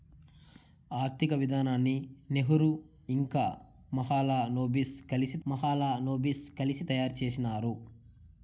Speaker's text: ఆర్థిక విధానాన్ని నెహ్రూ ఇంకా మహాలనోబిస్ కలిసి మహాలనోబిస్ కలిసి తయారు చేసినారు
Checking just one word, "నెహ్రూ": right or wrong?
right